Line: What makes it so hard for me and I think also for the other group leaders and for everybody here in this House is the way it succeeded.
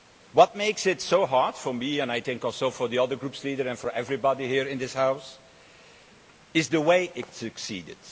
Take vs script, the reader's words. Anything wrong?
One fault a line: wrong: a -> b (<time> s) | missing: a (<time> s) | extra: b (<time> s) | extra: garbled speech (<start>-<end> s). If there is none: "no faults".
no faults